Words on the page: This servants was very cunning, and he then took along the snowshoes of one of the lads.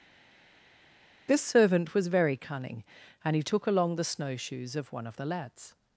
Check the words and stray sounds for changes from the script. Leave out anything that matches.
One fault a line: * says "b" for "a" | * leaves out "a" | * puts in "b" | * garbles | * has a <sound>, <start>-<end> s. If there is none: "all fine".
* says "servant" for "servants"
* leaves out "then"